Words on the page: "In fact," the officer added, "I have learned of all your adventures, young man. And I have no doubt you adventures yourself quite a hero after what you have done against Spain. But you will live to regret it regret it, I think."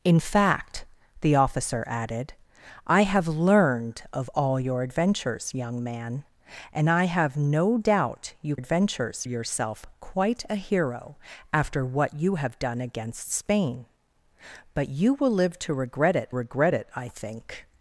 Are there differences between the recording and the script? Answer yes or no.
no